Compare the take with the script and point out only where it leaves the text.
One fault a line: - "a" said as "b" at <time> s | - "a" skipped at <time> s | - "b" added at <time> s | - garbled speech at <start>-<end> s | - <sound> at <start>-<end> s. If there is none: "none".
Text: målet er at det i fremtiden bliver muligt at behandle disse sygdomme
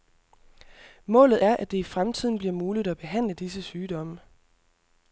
none